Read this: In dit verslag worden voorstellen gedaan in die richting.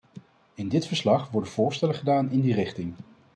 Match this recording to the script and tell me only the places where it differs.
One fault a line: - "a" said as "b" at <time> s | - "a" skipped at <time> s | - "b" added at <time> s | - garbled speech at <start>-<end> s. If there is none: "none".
none